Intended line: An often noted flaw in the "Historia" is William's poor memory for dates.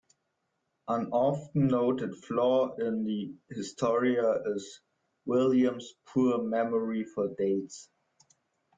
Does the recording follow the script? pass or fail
pass